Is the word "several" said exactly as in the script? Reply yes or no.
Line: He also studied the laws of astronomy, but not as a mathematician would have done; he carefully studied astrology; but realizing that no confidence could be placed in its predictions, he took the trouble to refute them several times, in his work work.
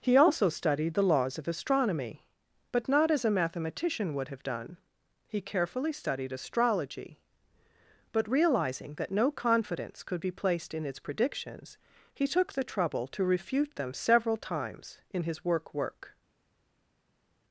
yes